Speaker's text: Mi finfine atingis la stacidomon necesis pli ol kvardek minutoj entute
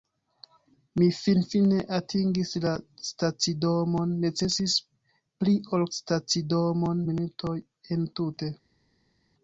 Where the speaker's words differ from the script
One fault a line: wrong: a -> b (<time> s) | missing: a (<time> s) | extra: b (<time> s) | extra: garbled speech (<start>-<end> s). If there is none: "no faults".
wrong: kvardek -> stacidomon (6.0 s)